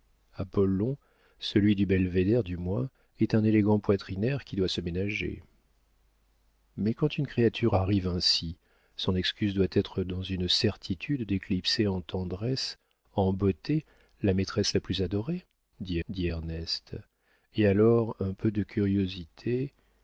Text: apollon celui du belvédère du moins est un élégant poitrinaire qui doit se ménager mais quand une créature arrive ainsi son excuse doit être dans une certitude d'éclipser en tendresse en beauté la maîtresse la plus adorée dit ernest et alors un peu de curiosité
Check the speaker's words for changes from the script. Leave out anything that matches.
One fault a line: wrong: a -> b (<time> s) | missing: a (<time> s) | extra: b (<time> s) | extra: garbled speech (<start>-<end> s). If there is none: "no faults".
extra: dit (16.1 s)